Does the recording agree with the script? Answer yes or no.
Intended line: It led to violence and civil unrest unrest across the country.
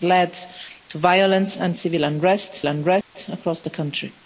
yes